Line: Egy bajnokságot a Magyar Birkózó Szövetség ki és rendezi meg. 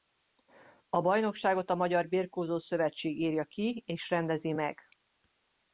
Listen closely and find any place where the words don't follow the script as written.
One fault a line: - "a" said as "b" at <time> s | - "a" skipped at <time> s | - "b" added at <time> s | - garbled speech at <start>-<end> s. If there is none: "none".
- "Egy" said as "A" at 0.9 s
- "írja" added at 3.2 s